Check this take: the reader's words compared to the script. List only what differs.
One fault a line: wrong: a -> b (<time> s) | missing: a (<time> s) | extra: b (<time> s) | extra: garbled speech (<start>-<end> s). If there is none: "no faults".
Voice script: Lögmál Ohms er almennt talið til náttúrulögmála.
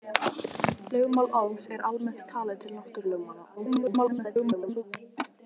extra: garbled speech (3.6-4.8 s)